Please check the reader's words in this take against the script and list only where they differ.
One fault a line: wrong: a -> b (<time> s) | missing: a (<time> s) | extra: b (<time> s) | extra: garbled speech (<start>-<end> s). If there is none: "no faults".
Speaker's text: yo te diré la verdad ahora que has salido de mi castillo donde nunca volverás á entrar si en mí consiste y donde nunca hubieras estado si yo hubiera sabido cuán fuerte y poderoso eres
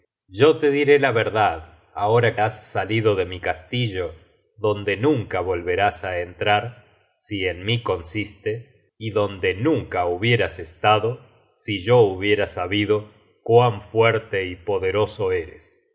missing: que (2.4 s)